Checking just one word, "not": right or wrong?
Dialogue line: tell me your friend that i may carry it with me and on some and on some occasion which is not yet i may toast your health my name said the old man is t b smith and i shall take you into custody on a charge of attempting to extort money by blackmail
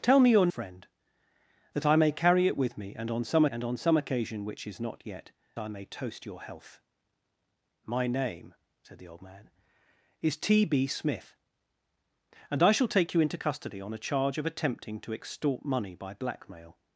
right